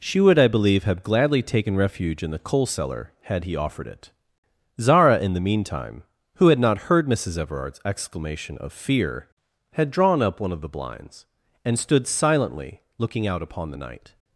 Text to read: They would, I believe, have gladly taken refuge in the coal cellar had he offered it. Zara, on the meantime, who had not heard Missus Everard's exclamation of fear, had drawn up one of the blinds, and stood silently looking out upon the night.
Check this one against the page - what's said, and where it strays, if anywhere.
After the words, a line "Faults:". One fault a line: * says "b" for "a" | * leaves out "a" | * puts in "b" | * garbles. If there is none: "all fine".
She would, I believe, have gladly taken refuge in the coal cellar had he offered it. Zara, in the meantime, who had not heard Missus Everard's exclamation of fear, had drawn up one of the blinds, and stood silently looking out upon the night.
Faults:
* says "She" for "They"
* says "in" for "on"